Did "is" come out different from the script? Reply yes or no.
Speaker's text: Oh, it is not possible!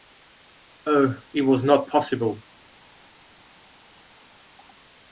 yes